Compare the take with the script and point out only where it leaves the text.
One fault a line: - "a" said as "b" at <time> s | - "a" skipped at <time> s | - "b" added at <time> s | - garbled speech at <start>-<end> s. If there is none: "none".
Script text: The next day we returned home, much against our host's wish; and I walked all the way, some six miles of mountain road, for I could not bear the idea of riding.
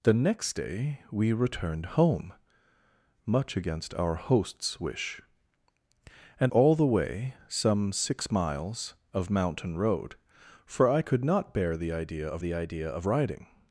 - "I walked" skipped at 6.5 s
- "the idea of" added at 12.4 s